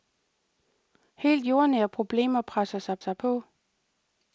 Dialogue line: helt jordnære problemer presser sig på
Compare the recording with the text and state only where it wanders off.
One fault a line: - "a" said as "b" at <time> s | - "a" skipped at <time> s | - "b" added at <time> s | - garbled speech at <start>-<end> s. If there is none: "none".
- "sig" added at 3.0 s